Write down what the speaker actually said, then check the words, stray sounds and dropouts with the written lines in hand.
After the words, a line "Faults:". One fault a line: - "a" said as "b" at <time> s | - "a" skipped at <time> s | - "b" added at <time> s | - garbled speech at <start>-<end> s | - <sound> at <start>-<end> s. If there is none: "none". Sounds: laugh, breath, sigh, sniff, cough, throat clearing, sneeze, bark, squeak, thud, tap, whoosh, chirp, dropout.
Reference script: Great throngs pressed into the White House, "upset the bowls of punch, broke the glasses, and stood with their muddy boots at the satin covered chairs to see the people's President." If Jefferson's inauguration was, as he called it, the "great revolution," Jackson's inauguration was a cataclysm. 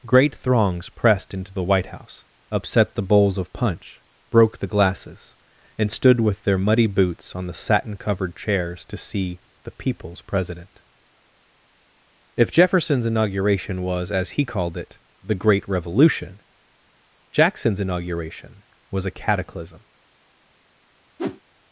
Great throngs pressed into the White House, "upset the bowls of punch, broke the glasses, and stood with their muddy boots on the satin covered chairs to see the people's President." If Jefferson's inauguration was, as he called it, the "great revolution," Jackson's inauguration was a cataclysm.
Faults:
- "at" said as "on" at 7.3 s
- whoosh at 21.2-21.4 s